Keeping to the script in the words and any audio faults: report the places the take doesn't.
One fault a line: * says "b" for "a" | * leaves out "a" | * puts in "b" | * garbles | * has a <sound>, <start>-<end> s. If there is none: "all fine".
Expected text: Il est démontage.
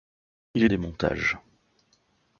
all fine